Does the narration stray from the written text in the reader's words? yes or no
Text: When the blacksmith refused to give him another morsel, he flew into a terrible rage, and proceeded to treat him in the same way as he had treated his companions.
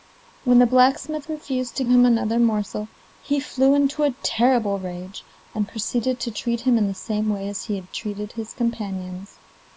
yes